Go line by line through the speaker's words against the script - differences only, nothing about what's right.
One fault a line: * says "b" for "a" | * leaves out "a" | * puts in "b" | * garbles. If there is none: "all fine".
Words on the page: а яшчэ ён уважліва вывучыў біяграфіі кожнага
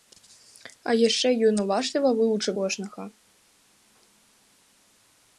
* leaves out "біяграфіі"